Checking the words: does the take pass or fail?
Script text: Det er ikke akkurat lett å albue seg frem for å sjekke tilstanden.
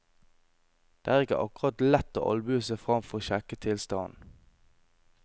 pass